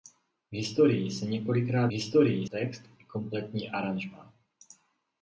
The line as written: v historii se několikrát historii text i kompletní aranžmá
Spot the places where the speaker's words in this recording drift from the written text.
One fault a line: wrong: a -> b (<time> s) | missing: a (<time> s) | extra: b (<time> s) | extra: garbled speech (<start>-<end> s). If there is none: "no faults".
no faults